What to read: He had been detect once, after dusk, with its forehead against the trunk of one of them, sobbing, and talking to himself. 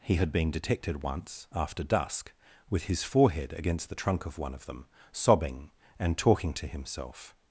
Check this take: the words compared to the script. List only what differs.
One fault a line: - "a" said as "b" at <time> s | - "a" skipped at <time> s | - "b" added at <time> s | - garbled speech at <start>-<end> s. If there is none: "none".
- "detect" said as "detected" at 0.5 s
- "its" said as "his" at 2.8 s